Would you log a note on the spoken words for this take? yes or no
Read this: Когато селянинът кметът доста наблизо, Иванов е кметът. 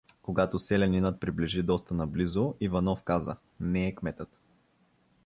yes